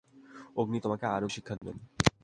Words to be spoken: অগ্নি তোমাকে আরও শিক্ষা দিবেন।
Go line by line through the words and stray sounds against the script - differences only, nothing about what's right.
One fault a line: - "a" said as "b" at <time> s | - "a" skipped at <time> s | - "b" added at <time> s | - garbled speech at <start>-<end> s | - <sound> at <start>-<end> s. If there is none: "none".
- dropout at 1.6-1.6 s